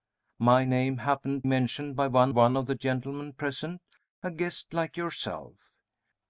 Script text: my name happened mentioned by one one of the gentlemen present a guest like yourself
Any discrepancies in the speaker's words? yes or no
no